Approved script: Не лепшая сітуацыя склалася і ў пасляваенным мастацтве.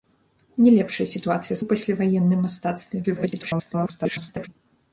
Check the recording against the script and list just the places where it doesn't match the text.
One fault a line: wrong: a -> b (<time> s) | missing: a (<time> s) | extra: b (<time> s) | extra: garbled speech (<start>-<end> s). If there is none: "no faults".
missing: склалася і (1.6 s)
extra: garbled speech (3.0-4.5 s)